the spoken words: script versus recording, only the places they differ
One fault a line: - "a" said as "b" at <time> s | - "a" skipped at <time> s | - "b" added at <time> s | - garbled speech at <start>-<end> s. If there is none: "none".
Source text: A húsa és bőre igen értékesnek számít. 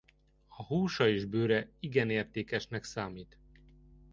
none